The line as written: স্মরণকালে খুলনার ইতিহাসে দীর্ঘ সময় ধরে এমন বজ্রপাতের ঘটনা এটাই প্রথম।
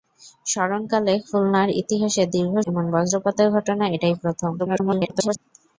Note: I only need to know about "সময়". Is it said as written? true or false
false